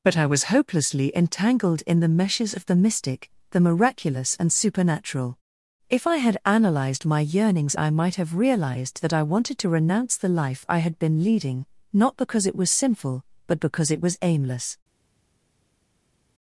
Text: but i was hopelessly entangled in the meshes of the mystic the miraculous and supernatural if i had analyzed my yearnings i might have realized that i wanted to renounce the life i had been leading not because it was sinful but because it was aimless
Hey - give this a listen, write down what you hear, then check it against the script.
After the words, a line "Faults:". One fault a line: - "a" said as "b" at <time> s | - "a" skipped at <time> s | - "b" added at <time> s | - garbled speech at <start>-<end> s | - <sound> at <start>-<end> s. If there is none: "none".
but i was hopelessly entangled in the meshes of the mystic the miraculous and supernatural if i had analyzed my yearnings i might have realized that i wanted to renounce the life i had been leading not because it was sinful but because it was aimless
Faults:
none